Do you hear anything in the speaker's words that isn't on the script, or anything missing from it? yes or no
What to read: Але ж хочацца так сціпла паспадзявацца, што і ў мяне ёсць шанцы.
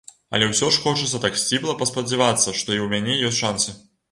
yes